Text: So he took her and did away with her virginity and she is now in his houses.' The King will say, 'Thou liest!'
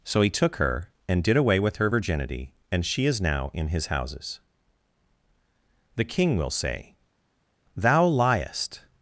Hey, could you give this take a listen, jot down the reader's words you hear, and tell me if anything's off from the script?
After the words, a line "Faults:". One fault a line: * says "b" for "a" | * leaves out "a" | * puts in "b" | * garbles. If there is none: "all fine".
So he took her and did away with her virginity and she is now in his houses.' The King will say, 'Thou liest!'
Faults:
all fine